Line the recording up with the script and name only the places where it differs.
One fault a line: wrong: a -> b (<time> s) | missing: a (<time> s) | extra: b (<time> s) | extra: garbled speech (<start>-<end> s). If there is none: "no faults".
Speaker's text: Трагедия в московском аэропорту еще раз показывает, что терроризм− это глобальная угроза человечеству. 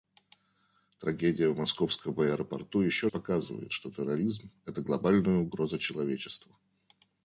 missing: раз (3.0 s)